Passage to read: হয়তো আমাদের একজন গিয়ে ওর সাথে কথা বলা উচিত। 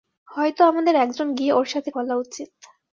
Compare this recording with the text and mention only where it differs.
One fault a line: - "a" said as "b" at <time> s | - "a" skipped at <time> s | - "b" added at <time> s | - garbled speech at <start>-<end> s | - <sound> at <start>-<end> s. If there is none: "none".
- "কথা" skipped at 1.9 s